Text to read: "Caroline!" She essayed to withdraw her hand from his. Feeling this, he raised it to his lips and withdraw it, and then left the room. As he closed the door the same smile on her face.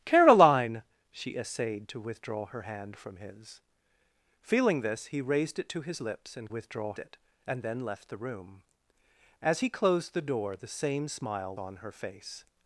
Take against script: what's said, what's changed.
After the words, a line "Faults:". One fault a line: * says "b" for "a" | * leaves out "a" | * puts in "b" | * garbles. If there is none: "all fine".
"Caroline!" She essayed to withdraw her hand from his. Feeling this, he raised it to his lips and withdraw it, and then left the room. As he closed the door the same smile on her face.
Faults:
all fine